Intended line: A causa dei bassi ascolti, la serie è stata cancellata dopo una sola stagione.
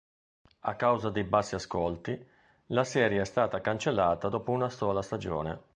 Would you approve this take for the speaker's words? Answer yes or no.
yes